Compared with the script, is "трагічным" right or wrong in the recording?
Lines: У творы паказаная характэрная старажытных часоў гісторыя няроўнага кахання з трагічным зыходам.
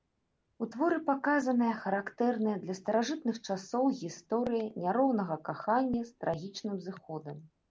right